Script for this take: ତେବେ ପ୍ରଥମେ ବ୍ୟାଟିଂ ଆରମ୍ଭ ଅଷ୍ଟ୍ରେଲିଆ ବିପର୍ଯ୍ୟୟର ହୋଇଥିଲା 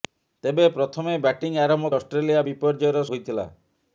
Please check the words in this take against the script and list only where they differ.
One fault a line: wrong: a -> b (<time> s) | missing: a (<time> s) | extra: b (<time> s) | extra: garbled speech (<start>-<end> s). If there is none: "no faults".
no faults